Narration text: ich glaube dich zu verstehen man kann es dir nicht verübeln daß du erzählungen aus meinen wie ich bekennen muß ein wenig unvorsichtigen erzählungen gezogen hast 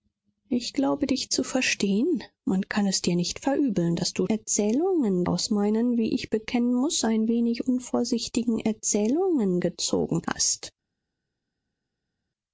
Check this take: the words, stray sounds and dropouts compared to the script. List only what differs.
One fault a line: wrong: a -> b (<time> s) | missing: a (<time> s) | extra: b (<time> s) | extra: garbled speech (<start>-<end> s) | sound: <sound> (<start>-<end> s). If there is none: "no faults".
no faults